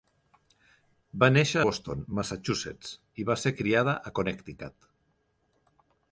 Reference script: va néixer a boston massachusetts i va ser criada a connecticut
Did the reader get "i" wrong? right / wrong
right